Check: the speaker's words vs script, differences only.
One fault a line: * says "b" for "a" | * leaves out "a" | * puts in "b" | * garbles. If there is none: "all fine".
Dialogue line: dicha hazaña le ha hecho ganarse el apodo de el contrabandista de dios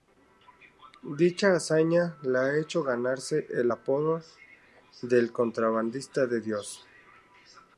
all fine